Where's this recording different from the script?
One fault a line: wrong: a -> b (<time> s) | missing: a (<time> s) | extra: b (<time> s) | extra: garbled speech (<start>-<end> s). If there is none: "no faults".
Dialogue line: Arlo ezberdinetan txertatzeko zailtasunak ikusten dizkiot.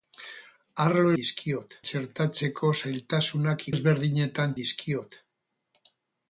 wrong: ezberdinetan -> dizkiot (1.2 s)
wrong: ikusten -> ezberdinetan (3.7 s)